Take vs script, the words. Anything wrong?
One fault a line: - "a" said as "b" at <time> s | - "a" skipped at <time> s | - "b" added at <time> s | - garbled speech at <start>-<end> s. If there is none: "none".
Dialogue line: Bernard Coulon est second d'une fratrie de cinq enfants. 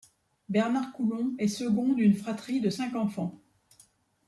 none